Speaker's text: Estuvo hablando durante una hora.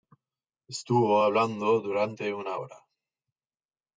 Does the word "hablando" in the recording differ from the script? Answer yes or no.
no